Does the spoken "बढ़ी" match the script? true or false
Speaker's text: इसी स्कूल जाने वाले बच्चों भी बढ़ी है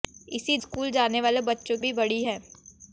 true